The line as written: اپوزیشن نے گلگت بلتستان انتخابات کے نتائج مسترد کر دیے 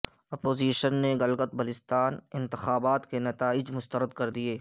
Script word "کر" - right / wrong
right